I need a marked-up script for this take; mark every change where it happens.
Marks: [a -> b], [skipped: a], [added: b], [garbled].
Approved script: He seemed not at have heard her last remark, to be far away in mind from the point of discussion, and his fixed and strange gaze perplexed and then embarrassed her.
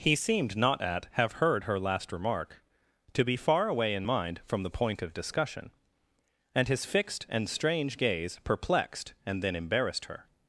He seemed not at have heard her last remark, to be far away in mind from the point of discussion, and his fixed and strange gaze perplexed and then embarrassed her.